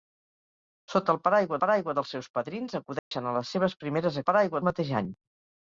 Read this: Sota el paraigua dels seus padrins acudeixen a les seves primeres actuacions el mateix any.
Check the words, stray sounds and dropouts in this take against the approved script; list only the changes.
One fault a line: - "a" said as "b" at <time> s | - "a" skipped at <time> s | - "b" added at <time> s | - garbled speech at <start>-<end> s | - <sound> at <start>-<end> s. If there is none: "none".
- "paraigua" added at 1.6 s
- dropout at 3.0-3.1 s
- "actuacions" said as "paraigua" at 4.3 s